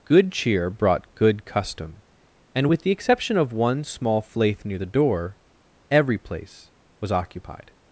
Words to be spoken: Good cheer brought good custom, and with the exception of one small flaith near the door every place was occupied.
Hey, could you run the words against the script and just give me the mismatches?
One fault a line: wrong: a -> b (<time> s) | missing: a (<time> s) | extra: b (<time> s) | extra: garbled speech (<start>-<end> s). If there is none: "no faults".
no faults